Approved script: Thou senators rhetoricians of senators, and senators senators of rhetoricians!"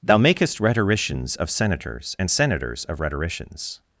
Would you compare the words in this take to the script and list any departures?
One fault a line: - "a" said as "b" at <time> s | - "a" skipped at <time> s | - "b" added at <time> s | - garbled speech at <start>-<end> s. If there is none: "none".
- "senators" said as "makest" at 0.2 s
- "senators" skipped at 2.8 s